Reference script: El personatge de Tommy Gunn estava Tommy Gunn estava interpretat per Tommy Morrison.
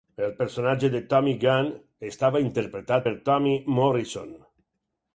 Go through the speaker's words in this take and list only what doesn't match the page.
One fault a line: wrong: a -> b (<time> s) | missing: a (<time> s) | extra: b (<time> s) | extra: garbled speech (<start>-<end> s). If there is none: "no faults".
missing: Tommy Gunn estava (2.4 s)